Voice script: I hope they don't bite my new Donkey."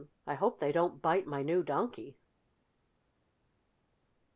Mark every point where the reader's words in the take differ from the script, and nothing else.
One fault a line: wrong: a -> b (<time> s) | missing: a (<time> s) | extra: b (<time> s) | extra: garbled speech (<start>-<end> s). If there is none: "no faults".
no faults